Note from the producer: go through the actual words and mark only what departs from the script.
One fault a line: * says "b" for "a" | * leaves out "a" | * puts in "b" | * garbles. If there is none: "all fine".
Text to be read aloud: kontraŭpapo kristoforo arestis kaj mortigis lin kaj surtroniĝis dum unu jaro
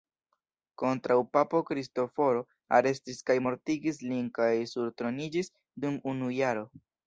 all fine